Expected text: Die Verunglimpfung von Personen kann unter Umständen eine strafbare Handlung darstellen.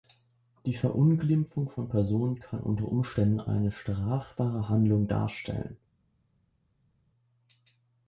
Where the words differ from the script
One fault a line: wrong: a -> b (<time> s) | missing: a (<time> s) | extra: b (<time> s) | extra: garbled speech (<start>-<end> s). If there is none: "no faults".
no faults